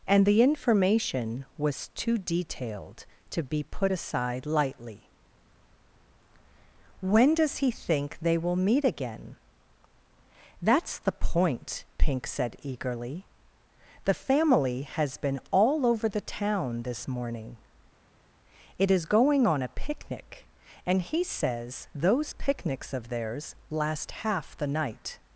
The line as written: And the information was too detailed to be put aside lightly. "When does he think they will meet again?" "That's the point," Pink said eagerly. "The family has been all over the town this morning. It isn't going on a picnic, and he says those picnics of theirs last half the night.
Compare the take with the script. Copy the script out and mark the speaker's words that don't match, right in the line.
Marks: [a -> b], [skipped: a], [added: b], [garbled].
And the information was too detailed to be put aside lightly. "When does he think they will meet again?" "That's the point," Pink said eagerly. "The family has been all over the town this morning. It [isn't -> is] going on a picnic, and he says those picnics of theirs last half the night.